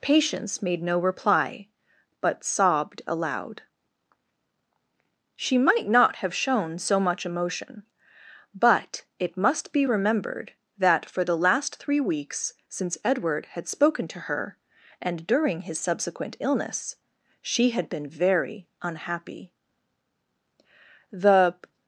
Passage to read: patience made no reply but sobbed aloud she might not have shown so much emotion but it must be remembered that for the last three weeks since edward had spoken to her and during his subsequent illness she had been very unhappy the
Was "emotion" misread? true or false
false